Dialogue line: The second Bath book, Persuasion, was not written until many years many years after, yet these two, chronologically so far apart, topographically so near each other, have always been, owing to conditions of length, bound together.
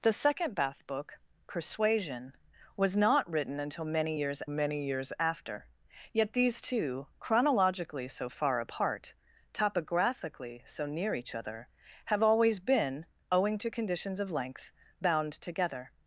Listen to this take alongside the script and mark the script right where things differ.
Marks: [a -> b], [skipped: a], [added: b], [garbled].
The second Bath book, Persuasion, was not written until many years many years after, yet these two, chronologically so far apart, topographically so near each other, have always been, owing to conditions of length, bound together.